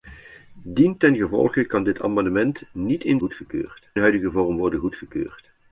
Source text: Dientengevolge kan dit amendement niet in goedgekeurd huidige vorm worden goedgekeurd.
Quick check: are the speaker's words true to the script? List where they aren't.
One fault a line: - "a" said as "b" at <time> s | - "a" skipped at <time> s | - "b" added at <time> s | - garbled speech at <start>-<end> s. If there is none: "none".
none